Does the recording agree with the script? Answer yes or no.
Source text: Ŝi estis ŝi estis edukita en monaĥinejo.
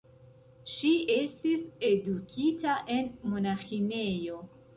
no